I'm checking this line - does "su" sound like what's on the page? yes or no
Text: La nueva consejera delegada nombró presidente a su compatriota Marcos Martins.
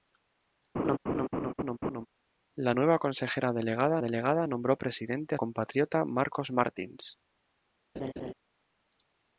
no